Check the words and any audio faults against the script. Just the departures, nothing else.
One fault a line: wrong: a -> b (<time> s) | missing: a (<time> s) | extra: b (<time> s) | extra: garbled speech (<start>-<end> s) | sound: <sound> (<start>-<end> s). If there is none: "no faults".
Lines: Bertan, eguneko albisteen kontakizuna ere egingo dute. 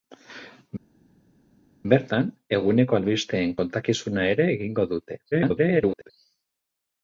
extra: garbled speech (5.3-6.1 s)